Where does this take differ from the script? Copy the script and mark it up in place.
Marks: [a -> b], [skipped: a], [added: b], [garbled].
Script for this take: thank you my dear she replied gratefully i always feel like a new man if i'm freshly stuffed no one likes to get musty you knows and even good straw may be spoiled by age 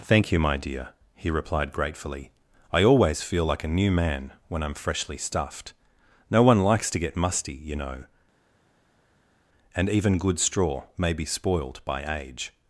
thank you my dear [she -> he] replied gratefully i always feel like a new man [if -> when] i'm freshly stuffed no one likes to get musty you [knows -> know] and even good straw may be spoiled by age